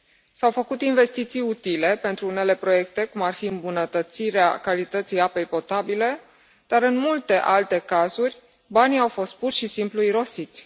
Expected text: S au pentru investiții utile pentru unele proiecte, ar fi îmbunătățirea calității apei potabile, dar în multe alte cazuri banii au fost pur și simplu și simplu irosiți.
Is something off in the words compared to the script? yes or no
yes